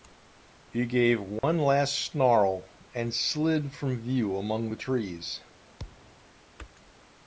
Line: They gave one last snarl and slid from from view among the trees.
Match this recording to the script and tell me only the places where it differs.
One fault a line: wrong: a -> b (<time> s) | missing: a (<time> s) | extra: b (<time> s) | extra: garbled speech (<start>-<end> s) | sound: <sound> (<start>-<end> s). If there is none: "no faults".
wrong: They -> He (0.7 s)
sound: dropout (1.4-1.4 s)
missing: from (4.0 s)
sound: thud (5.8-6.2 s)